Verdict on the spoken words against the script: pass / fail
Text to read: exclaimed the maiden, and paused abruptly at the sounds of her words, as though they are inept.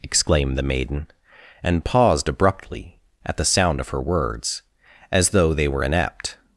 fail